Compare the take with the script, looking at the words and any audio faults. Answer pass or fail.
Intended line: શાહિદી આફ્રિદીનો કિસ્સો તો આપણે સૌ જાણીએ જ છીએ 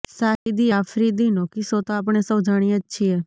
fail